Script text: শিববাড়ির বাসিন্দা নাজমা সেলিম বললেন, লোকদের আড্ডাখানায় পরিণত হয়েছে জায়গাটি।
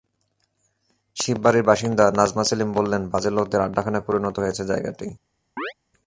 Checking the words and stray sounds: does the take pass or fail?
fail